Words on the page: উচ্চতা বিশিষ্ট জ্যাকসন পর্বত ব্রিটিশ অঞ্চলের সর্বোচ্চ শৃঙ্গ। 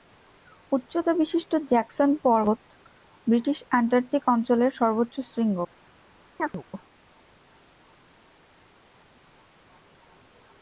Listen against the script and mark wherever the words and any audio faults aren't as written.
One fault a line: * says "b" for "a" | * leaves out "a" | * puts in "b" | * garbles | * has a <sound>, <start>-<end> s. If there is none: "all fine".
* puts in "অ্যান্টার্কটিক"
* has a chirp, 6.4-6.6 s